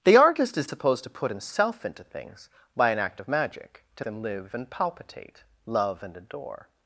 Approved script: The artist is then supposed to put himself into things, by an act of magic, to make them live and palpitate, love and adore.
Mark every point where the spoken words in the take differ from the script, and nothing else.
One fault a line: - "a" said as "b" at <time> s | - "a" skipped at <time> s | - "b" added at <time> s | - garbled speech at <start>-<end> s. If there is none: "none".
- "then" skipped at 0.7 s
- "make" skipped at 4.0 s